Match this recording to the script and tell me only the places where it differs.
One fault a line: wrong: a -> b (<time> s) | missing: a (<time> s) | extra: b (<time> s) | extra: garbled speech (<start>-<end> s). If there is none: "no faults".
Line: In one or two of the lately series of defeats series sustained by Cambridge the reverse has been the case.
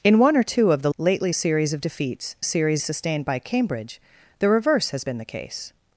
no faults